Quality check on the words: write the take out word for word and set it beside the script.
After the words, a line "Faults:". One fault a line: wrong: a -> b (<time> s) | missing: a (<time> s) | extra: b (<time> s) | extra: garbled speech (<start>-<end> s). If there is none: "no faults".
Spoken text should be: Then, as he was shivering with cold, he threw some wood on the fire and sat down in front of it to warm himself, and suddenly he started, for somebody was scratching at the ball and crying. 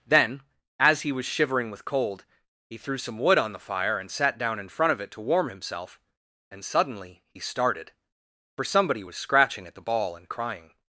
Then, as he was shivering with cold, he threw some wood on the fire and sat down in front of it to warm himself, and suddenly he started, for somebody was scratching at the ball and crying.
Faults:
no faults